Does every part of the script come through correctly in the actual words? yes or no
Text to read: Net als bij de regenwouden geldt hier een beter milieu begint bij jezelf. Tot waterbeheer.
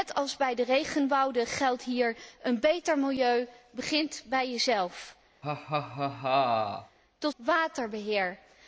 yes